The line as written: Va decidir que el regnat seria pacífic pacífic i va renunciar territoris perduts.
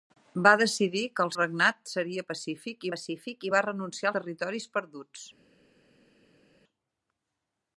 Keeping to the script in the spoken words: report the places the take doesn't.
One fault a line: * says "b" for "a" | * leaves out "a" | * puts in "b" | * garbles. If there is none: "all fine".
all fine